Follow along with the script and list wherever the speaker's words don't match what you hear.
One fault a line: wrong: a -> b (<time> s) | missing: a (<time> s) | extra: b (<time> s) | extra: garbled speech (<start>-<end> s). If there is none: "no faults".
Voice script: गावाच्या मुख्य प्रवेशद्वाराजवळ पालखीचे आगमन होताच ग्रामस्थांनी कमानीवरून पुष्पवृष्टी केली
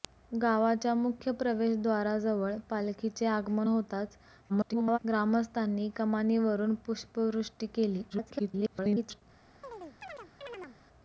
extra: garbled speech (4.5-5.0 s)
extra: garbled speech (8.1-9.2 s)